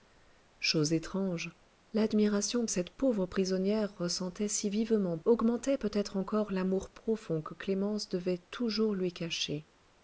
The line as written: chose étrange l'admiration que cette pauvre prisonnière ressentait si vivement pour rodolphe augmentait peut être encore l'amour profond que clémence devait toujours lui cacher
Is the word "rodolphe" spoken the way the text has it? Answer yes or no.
no